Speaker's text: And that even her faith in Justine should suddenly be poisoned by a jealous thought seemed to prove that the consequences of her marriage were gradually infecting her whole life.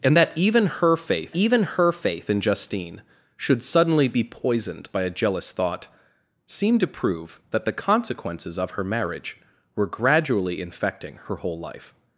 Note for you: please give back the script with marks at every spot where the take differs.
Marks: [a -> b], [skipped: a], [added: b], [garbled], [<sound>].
And that even her faith [added: even her faith] in Justine should suddenly be poisoned by a jealous thought seemed to prove that the consequences of her marriage were gradually infecting her whole life.